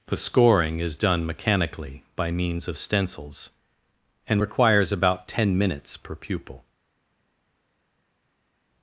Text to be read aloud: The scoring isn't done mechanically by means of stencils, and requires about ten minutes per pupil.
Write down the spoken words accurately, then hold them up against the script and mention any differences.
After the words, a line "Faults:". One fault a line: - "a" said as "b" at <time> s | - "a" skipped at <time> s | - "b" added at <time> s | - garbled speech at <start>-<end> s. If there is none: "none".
The scoring is done mechanically by means of stencils, and requires about ten minutes per pupil.
Faults:
- "isn't" said as "is" at 0.8 s